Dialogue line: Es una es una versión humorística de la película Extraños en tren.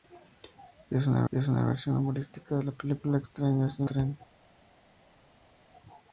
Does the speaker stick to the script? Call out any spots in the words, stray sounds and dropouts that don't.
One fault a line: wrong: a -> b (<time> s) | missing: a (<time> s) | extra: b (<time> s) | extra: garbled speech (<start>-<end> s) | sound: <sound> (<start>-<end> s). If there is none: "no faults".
no faults